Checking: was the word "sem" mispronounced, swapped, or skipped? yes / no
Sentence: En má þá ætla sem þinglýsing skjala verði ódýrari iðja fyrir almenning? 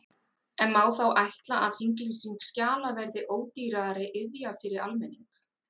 yes